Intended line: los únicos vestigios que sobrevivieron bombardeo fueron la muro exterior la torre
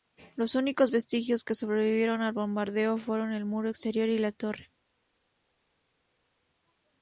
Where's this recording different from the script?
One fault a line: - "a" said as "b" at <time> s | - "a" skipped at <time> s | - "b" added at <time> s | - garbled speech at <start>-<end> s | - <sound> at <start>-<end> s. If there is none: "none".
- "al" added at 2.2 s
- "la" said as "el" at 3.3 s
- "y" added at 4.1 s